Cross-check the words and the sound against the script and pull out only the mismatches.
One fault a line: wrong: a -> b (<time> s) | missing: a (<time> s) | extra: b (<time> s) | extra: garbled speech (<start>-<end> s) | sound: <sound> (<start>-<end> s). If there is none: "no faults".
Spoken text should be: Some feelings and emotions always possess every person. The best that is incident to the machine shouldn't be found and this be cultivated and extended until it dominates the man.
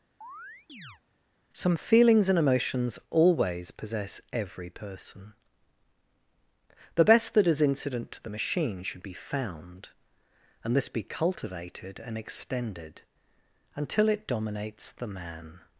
sound: chirp (0.2-1.0 s)
wrong: shouldn't -> should (8.8 s)